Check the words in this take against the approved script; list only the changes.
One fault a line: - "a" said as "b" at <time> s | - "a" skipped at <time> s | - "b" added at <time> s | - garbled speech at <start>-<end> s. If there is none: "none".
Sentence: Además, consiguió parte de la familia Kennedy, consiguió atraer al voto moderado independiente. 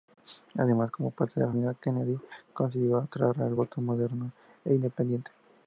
- "consiguió" said as "como" at 0.9 s
- "e" added at 4.6 s